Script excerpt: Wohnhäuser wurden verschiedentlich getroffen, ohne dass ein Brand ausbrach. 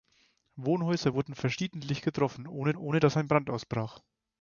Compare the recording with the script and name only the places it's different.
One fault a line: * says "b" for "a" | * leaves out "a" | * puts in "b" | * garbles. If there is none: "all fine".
* puts in "ohne"